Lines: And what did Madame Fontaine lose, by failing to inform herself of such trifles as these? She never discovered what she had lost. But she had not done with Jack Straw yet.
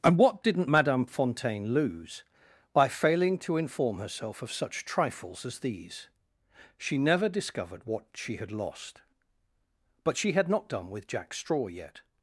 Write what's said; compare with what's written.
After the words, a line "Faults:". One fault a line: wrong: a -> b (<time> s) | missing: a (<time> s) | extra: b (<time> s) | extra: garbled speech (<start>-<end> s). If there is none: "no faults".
And what didn't Madame Fontaine lose, by failing to inform herself of such trifles as these? She never discovered what she had lost. But she had not done with Jack Straw yet.
Faults:
wrong: did -> didn't (0.4 s)